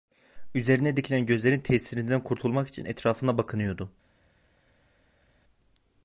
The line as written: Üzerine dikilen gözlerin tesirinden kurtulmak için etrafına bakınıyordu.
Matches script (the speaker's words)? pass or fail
pass